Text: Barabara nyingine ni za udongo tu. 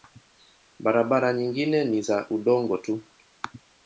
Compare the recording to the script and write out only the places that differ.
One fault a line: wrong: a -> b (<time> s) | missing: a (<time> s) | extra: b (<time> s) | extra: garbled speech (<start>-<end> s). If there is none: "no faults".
no faults